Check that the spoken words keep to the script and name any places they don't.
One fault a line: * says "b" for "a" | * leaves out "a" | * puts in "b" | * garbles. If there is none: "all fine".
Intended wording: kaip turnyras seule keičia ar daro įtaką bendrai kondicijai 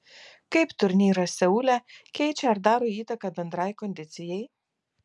all fine